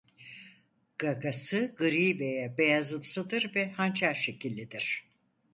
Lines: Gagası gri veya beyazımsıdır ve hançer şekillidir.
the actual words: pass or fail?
pass